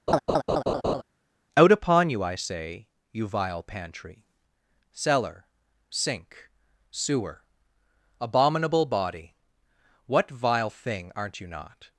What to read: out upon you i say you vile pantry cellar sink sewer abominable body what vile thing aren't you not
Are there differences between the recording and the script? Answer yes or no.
no